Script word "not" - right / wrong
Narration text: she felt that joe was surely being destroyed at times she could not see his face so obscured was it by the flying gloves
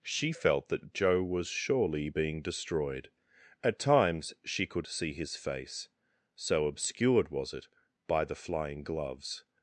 wrong